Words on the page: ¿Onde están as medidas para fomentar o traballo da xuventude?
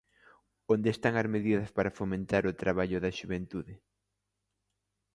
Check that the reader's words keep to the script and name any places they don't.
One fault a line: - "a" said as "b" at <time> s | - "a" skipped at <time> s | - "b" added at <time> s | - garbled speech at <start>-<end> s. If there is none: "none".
none